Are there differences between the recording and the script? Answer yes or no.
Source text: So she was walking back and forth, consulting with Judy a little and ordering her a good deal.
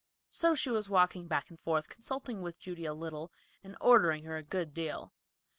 no